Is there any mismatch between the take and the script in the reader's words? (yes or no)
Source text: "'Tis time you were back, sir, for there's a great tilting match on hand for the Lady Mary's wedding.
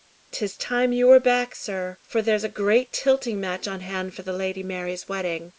no